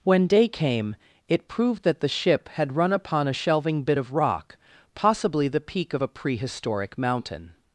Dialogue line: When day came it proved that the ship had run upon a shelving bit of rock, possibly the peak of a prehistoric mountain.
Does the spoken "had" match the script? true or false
true